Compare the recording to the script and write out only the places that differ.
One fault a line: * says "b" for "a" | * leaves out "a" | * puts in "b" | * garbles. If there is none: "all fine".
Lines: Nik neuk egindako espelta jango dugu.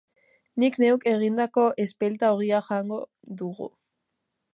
* puts in "ogia"